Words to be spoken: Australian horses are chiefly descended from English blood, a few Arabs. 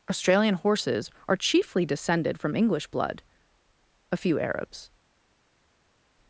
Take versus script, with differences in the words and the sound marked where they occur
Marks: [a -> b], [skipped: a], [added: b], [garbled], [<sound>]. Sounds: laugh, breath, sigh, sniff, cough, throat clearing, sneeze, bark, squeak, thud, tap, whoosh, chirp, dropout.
Australian horses are chiefly descended from English blood, a few Arabs.